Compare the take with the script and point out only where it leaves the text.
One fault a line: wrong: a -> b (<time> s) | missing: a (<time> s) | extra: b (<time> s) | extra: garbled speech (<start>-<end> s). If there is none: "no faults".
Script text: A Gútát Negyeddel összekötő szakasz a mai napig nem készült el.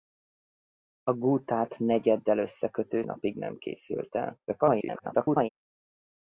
missing: szakasz a mai (3.0 s)
extra: garbled speech (4.5-5.5 s)